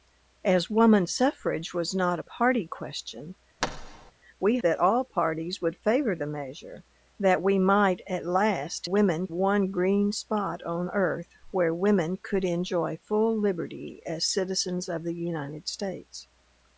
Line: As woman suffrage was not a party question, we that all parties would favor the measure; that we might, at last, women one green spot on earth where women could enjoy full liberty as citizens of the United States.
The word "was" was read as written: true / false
true